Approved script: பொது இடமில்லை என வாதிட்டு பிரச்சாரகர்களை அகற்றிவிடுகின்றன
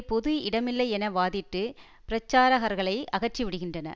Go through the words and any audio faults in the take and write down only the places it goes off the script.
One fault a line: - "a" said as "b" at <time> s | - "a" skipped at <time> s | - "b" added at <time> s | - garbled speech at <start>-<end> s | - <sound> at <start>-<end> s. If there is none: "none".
none